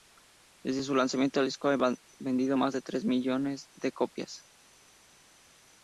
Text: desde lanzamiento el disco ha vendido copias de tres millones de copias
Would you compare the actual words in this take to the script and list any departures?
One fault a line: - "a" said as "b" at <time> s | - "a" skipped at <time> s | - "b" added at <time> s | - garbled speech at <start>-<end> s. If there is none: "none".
- "su" added at 0.8 s
- "copias" said as "más" at 2.5 s